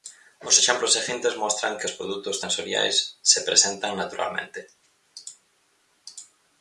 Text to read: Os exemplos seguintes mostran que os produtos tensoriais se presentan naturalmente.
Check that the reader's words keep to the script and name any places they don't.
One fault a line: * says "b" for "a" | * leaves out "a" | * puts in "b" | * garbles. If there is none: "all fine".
all fine